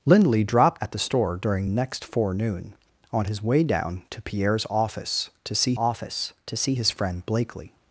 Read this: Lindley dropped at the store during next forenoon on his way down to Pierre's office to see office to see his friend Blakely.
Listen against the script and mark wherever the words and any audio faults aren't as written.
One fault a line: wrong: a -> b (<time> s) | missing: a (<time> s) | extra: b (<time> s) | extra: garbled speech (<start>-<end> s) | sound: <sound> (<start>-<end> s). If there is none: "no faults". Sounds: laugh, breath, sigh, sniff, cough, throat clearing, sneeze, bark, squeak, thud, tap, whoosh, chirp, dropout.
no faults